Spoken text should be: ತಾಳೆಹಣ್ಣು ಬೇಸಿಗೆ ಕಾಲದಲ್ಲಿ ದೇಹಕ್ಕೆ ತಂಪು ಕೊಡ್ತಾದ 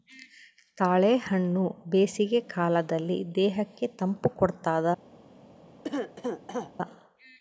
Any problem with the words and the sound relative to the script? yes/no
yes